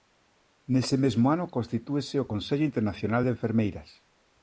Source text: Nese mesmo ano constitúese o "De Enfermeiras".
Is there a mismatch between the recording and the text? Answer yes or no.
yes